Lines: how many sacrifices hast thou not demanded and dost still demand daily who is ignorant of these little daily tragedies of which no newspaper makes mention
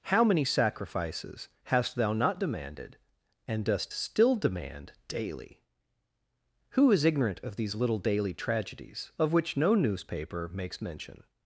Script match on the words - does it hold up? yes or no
yes